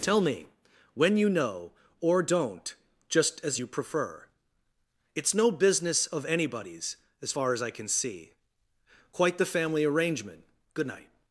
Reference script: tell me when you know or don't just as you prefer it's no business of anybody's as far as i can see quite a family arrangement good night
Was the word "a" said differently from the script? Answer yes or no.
yes